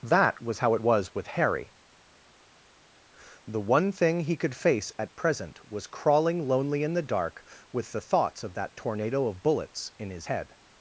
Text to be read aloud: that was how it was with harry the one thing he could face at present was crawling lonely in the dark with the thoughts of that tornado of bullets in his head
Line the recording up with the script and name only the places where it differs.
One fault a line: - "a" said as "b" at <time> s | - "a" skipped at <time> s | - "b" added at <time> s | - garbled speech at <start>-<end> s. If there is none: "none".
none